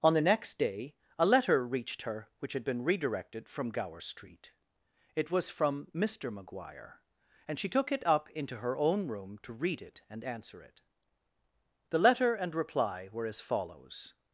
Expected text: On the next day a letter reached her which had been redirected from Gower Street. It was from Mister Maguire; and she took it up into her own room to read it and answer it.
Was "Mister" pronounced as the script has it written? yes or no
yes